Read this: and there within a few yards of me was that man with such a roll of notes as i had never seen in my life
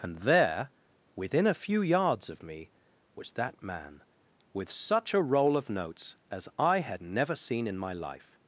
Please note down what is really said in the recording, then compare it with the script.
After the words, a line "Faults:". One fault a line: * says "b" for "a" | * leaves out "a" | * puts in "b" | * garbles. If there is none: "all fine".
and there within a few yards of me was that man with such a roll of notes as i had never seen in my life
Faults:
all fine